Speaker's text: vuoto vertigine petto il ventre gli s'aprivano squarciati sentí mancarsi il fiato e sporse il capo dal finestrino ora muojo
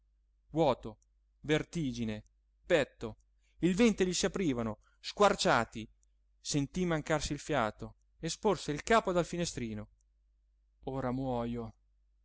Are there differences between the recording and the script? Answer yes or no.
no